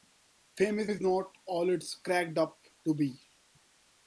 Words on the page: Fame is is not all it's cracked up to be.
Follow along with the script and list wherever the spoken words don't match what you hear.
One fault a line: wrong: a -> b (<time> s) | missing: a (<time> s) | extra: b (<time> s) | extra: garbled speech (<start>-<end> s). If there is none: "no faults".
no faults